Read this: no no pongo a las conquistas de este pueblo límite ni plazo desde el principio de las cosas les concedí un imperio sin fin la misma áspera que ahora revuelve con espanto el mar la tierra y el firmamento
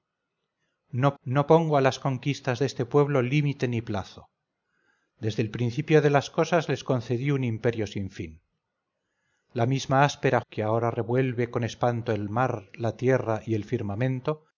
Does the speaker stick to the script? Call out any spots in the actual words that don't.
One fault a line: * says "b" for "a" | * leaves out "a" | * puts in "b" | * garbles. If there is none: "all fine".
all fine